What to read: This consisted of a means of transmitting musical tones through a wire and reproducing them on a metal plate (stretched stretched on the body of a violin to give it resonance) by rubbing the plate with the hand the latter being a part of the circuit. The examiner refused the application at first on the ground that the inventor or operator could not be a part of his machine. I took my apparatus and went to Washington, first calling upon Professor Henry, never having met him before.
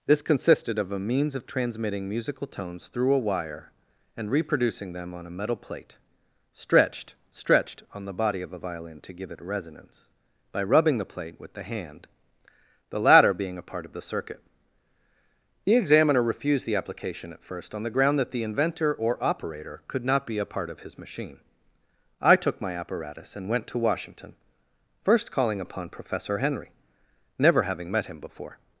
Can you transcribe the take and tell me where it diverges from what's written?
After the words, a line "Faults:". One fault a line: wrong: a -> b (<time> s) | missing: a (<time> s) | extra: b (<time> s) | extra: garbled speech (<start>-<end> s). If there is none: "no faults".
This consisted of a means of transmitting musical tones through a wire and reproducing them on a metal plate (stretched stretched on the body of a violin to give it resonance) by rubbing the plate with the hand the latter being a part of the circuit. The examiner refused the application at first on the ground that the inventor or operator could not be a part of his machine. I took my apparatus and went to Washington, first calling upon Professor Henry, never having met him before.
Faults:
no faults